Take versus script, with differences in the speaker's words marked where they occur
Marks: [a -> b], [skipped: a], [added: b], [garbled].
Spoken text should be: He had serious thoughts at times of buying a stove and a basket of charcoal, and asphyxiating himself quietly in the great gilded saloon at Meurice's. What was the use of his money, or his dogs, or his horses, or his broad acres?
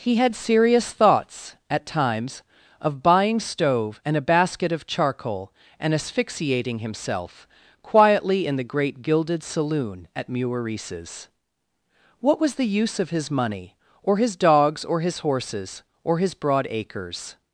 He had serious thoughts at times of buying [skipped: a] stove and a basket of charcoal, and asphyxiating himself quietly in the great gilded saloon at Meurice's. What was the use of his money, or his dogs, or his horses, or his broad acres?